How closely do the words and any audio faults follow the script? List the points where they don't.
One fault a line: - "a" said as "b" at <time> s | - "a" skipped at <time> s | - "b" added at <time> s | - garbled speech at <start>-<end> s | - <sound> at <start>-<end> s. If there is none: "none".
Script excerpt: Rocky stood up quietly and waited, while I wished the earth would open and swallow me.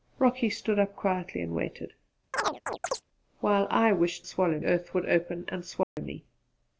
- chirp at 2.3-3.0 s
- "the" said as "swallow" at 4.2 s
- dropout at 5.8-6.0 s